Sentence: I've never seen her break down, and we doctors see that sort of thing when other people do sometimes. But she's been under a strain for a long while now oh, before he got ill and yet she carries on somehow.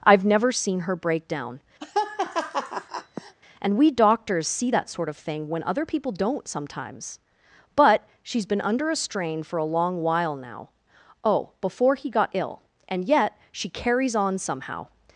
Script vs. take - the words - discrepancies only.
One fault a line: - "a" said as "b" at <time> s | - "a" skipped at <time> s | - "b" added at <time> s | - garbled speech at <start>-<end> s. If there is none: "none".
- "do" said as "don't" at 6.1 s